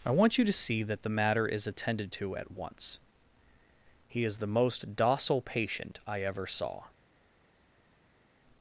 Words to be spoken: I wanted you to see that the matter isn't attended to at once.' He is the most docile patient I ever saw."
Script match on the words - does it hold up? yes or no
no